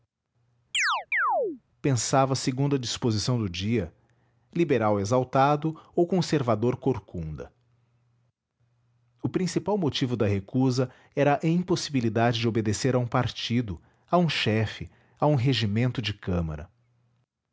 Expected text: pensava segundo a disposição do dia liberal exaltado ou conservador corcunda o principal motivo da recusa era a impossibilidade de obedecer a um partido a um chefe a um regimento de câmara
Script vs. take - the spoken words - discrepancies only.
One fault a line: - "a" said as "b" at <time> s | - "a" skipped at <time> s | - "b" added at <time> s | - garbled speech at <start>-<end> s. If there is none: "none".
none